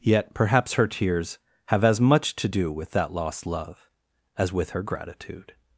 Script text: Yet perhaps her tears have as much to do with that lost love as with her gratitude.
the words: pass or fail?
pass